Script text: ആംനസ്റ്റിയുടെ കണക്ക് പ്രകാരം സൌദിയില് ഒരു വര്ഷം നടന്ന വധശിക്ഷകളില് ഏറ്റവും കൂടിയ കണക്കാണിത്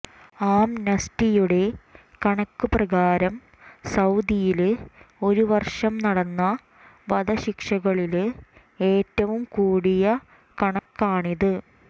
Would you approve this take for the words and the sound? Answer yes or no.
no